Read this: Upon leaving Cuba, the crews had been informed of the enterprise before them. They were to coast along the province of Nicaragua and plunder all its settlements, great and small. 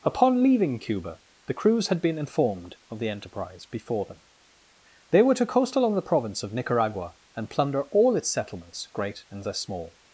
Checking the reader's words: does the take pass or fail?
pass